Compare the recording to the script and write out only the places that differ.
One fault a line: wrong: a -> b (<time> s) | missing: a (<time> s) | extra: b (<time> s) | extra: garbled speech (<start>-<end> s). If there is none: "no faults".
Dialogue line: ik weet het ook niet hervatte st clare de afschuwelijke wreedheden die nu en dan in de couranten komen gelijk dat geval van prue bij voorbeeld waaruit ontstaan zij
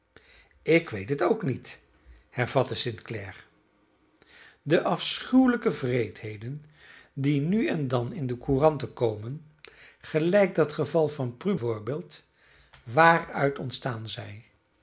missing: bij (11.6 s)